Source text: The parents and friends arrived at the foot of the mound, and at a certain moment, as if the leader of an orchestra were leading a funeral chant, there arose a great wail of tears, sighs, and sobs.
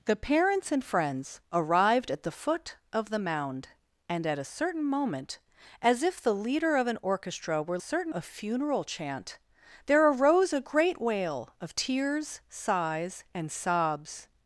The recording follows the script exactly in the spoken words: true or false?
false